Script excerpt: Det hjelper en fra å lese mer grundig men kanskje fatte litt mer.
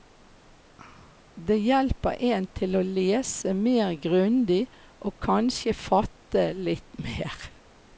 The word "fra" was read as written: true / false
false